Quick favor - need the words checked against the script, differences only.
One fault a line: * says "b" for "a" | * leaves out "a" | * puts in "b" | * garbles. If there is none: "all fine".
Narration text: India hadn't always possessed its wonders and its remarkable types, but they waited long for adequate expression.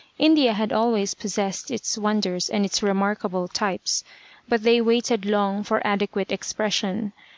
* says "had" for "hadn't"